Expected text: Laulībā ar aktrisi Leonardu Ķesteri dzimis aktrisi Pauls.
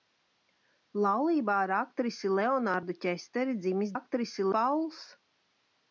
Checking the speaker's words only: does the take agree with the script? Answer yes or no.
yes